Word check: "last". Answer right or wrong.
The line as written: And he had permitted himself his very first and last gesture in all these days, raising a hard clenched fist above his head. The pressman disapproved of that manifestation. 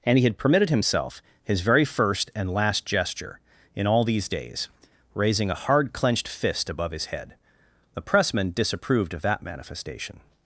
right